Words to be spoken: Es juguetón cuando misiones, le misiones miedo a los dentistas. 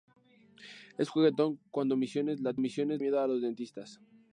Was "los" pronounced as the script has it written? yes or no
yes